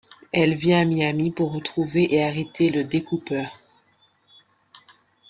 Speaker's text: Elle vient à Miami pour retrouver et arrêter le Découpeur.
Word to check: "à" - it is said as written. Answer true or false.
true